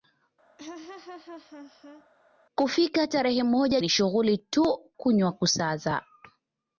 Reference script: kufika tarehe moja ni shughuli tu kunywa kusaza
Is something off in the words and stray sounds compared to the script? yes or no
yes